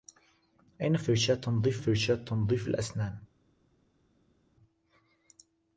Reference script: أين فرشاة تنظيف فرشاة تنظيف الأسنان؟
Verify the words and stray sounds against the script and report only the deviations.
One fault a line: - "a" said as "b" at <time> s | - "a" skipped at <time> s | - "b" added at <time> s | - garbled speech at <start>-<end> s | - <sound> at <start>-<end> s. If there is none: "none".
none